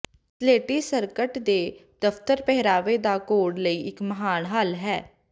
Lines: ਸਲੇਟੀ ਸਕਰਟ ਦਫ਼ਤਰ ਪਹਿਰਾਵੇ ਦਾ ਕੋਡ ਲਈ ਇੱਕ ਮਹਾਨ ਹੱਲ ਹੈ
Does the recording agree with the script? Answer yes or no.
no